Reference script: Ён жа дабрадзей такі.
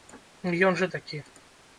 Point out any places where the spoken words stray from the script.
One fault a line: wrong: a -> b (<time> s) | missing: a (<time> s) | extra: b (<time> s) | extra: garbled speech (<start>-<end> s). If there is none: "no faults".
missing: дабрадзей (0.9 s)